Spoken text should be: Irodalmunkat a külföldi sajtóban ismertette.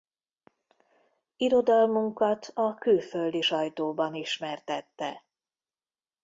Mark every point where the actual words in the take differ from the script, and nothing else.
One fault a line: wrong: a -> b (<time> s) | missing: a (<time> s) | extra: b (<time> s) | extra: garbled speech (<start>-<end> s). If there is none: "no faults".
no faults